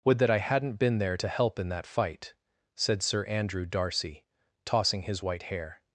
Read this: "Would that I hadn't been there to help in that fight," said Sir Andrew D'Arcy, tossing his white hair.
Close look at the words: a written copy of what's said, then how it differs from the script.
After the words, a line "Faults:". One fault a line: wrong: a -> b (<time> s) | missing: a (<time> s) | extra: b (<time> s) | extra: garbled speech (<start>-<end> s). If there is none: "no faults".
"Would that I hadn't been there to help in that fight," said Sir Andrew D'Arcy, tossing his white hair.
Faults:
no faults